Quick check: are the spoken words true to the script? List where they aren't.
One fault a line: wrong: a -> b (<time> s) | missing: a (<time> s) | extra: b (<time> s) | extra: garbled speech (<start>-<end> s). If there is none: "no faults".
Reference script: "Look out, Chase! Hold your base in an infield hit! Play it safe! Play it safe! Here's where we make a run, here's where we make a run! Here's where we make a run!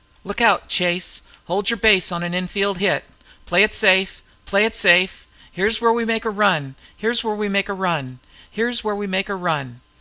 wrong: in -> on (2.1 s)